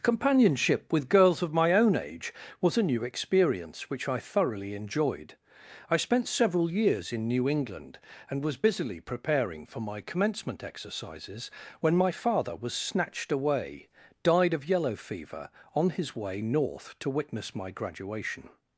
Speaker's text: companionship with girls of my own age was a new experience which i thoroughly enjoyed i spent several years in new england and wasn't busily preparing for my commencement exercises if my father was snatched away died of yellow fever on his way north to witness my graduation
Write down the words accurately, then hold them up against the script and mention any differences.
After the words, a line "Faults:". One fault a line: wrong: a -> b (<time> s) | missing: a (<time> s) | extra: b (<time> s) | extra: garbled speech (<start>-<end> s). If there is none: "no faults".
companionship with girls of my own age was a new experience which i thoroughly enjoyed i spent several years in new england and was busily preparing for my commencement exercises when my father was snatched away died of yellow fever on his way north to witness my graduation
Faults:
wrong: wasn't -> was (8.4 s)
wrong: if -> when (11.8 s)